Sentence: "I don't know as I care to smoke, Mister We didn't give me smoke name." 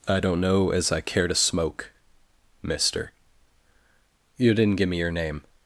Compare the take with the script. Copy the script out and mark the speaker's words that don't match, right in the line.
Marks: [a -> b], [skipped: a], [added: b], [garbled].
"I don't know as I care to smoke, Mister [We -> You] didn't give me [smoke -> your] name."